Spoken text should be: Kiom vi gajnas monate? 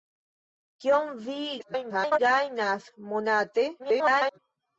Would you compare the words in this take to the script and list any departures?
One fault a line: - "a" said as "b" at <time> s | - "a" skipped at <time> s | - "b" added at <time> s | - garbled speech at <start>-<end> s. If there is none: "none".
- garbled speech at 1.6-2.2 s
- garbled speech at 3.8-4.4 s